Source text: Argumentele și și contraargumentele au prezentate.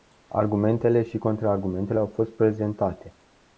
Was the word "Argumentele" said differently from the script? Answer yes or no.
no